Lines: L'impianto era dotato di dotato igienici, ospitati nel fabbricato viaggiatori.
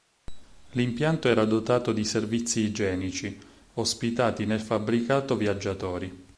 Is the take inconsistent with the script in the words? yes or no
yes